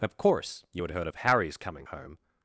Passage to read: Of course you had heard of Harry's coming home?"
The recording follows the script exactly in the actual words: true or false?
true